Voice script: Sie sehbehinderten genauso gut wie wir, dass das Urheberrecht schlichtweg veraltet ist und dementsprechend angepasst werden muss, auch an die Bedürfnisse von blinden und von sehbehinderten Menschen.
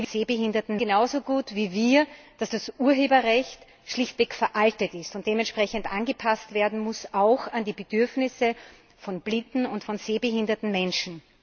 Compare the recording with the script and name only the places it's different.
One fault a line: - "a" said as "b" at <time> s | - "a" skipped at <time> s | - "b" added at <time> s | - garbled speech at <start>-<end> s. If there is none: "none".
none